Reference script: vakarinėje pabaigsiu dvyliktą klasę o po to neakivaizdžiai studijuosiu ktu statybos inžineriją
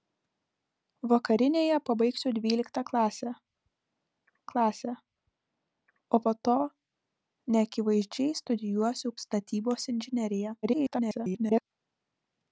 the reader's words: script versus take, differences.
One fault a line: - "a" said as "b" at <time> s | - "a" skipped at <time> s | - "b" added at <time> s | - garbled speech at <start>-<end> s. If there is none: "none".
- "klasę" added at 4.5 s
- "ktu" skipped at 9.1 s
- garbled speech at 10.6-11.6 s